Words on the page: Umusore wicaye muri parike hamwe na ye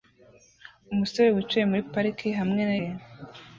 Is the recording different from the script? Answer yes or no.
no